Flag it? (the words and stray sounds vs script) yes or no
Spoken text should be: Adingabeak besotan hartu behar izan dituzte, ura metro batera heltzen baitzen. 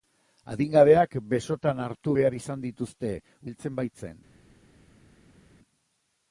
yes